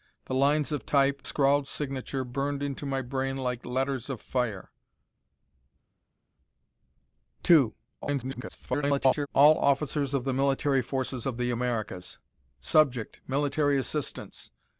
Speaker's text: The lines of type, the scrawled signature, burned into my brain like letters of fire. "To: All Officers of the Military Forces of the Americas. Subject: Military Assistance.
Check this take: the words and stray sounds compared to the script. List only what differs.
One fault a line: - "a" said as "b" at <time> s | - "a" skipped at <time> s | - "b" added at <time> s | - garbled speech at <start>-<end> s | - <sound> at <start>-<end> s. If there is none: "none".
- "the" skipped at 1.2 s
- garbled speech at 8.0-9.3 s